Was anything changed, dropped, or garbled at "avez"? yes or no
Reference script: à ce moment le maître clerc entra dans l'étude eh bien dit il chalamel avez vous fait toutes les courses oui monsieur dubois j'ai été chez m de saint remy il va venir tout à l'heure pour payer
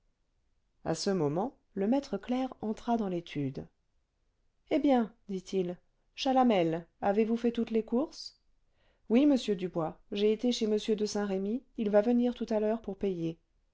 no